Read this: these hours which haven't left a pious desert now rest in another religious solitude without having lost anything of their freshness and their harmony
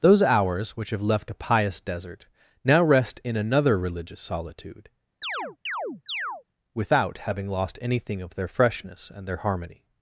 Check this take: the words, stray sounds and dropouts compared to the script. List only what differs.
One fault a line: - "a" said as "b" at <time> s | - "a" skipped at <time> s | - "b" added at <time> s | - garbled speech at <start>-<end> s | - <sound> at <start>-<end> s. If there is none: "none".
- "these" said as "those" at 0.0 s
- "haven't" said as "have" at 0.9 s
- chirp at 5.2-6.4 s